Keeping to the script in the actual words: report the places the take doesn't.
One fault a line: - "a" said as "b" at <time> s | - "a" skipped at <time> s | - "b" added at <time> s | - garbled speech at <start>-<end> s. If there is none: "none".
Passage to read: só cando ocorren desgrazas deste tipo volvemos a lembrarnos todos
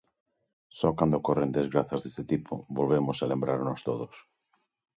none